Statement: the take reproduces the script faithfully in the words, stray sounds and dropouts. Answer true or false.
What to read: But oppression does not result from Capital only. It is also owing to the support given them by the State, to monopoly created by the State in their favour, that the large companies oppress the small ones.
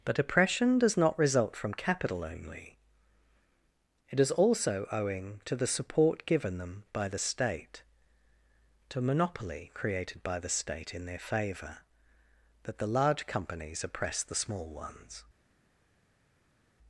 true